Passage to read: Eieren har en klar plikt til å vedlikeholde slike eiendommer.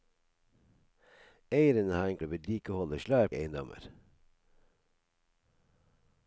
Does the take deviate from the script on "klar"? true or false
true